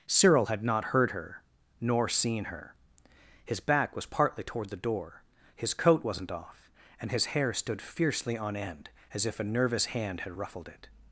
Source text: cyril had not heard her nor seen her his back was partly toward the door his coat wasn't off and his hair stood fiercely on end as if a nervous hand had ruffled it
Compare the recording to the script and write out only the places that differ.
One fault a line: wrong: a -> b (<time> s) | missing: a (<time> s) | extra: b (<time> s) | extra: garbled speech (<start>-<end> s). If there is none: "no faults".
no faults